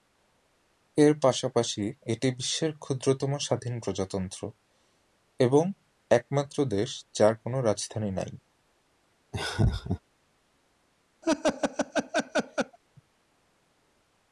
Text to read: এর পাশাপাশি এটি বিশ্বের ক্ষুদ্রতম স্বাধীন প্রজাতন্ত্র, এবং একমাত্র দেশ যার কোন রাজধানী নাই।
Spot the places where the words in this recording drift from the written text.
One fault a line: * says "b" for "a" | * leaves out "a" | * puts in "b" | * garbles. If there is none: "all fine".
all fine